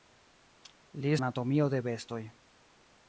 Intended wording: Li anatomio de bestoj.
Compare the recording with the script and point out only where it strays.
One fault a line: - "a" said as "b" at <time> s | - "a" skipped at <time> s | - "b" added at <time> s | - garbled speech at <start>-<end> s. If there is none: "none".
none